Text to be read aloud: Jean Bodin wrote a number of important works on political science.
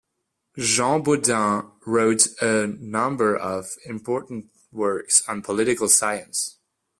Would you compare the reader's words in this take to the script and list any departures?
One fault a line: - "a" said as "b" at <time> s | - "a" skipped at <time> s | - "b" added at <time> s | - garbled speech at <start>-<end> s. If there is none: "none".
none